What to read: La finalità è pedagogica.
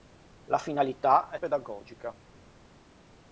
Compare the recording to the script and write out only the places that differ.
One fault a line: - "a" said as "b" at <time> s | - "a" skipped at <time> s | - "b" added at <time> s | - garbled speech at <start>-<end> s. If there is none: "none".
none